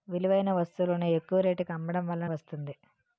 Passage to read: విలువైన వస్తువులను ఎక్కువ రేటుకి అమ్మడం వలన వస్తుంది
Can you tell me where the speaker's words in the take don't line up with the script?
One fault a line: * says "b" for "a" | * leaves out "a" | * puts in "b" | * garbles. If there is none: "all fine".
all fine